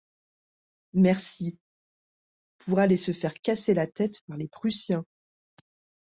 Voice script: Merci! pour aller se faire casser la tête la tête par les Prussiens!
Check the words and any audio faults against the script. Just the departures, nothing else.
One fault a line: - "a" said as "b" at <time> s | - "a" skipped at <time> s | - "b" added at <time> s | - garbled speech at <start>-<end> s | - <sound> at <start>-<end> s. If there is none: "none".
- "la tête" skipped at 4.2 s